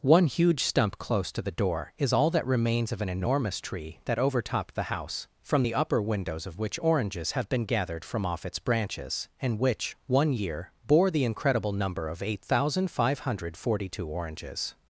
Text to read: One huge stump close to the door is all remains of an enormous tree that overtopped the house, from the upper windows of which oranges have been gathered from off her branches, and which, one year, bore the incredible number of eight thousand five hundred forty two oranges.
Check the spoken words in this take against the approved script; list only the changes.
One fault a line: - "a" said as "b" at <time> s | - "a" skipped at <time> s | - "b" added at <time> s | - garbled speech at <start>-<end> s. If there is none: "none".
- "that" added at 2.3 s
- "her" said as "its" at 8.5 s